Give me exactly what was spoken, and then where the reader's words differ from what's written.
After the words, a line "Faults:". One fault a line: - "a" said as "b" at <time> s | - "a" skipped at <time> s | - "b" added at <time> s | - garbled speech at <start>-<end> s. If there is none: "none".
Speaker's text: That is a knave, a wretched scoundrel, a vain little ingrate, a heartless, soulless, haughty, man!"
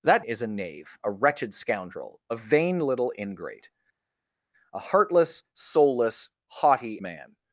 That is a knave, a wretched scoundrel, a vain little ingrate, a heartless, soulless, haughty, man!"
Faults:
none